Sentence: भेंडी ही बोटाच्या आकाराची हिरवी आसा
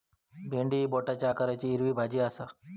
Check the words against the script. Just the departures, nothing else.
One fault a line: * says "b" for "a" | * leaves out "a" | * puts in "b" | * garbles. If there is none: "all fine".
* puts in "भाजी"